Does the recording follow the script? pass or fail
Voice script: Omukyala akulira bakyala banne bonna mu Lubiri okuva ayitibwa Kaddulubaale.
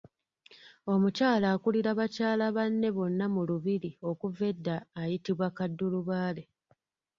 fail